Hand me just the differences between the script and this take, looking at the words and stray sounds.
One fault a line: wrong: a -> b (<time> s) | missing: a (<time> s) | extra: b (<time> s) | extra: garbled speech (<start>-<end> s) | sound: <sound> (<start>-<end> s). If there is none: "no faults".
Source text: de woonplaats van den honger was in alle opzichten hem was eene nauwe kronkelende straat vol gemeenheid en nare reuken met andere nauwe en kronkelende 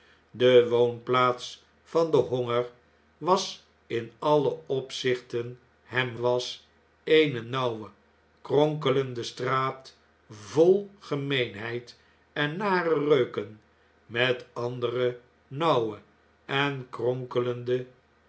no faults